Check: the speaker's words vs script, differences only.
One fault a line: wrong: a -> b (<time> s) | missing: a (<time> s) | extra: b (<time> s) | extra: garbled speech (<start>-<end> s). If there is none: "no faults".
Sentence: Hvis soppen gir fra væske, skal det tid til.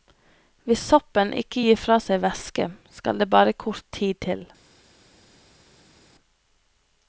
extra: ikke (1.4 s)
extra: seg (2.0 s)
extra: bare kort (3.3 s)